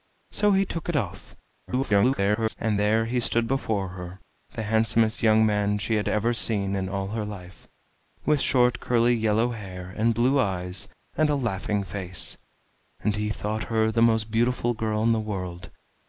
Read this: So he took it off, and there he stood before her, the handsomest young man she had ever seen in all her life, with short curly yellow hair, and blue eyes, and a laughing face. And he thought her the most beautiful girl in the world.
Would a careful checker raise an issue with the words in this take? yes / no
yes